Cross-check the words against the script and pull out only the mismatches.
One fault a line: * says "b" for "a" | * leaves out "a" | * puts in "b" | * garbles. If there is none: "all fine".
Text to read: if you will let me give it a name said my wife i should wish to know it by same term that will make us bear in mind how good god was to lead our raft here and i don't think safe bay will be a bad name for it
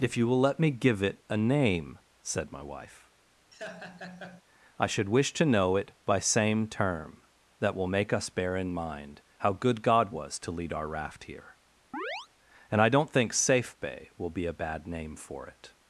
all fine